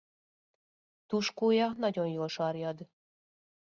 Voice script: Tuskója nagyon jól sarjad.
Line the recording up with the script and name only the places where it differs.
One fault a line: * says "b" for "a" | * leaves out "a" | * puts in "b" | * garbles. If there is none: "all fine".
all fine